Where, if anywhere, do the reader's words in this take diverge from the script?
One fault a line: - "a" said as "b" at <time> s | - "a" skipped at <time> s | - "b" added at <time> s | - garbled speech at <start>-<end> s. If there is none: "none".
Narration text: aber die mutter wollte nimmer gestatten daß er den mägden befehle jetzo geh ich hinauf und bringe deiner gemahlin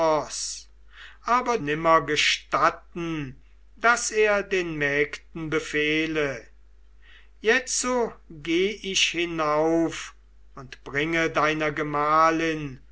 - "die mutter wollte" skipped at 1.6 s